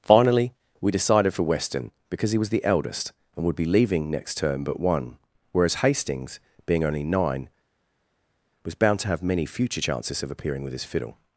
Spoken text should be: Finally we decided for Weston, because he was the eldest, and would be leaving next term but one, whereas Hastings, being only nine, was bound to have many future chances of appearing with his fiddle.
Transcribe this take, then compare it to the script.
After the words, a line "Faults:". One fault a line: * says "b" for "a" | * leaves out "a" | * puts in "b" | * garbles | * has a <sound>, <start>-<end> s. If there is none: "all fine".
Finally we decided for Weston, because he was the eldest, and would be leaving next term but one, whereas Hastings, being only nine, was bound to have many future chances of appearing with his fiddle.
Faults:
all fine